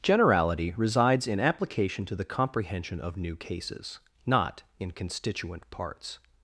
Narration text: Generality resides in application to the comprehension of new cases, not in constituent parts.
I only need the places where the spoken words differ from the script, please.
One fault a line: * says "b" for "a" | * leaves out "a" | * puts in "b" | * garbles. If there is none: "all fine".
all fine